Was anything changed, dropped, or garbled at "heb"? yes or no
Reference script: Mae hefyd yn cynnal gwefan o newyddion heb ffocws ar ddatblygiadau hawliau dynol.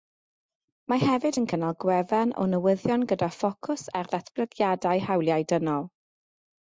yes